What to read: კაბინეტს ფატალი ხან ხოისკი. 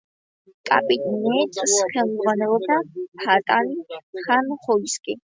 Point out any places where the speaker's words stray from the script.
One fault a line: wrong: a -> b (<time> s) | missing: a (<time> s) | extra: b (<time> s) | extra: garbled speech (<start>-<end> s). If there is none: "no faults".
extra: ხელმძღვანელობდა (1.9 s)